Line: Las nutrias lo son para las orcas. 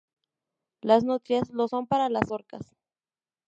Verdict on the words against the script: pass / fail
pass